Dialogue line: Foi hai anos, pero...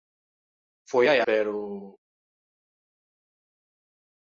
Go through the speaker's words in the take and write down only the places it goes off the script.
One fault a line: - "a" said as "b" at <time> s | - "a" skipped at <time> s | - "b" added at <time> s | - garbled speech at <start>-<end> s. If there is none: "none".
- "anos" skipped at 1.2 s